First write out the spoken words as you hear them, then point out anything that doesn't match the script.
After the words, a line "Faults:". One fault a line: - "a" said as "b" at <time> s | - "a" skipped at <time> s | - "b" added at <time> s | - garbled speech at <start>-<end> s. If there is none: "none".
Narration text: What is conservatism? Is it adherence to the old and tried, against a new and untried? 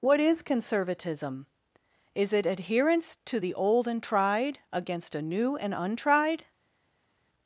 What is conservatism? Is it adherence to the old and tried, against a new and untried?
Faults:
none